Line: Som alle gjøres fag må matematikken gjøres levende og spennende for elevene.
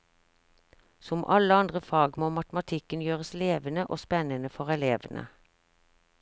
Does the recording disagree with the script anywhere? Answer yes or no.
yes